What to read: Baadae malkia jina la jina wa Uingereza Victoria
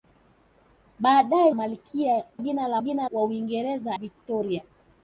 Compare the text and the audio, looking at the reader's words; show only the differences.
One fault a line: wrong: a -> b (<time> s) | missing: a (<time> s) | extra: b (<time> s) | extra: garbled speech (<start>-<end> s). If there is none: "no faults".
no faults